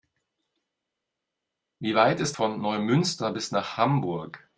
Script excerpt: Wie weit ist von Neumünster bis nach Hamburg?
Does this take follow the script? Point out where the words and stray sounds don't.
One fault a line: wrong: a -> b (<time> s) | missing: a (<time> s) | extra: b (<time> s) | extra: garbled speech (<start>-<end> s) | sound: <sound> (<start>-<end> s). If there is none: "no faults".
no faults